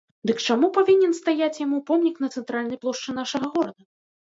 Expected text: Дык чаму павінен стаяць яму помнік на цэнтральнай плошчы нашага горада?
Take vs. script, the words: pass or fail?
pass